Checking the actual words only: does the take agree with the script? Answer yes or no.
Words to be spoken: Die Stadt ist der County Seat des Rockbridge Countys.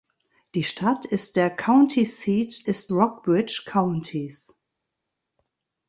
no